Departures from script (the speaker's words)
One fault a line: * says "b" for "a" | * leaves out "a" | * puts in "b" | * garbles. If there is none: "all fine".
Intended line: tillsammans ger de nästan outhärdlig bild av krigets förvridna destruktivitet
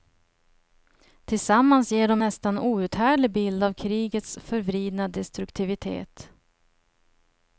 all fine